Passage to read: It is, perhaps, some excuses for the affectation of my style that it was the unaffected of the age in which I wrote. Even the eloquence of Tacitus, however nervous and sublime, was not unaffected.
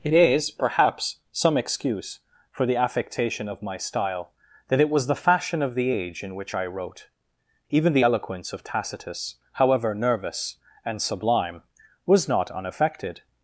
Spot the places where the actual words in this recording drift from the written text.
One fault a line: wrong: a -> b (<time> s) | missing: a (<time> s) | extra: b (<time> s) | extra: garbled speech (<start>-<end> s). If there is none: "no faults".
wrong: excuses -> excuse (1.6 s)
wrong: unaffected -> fashion (5.2 s)